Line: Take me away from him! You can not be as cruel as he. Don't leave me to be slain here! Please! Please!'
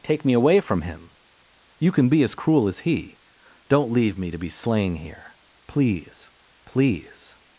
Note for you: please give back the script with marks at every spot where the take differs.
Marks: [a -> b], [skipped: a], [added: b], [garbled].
Take me away from him! You can [skipped: not] be as cruel as he. Don't leave me to be slain here! Please! Please!'